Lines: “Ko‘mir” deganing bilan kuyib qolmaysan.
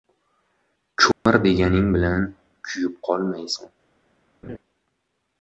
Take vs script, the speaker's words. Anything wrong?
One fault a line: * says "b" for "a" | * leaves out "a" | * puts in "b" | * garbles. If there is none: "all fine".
all fine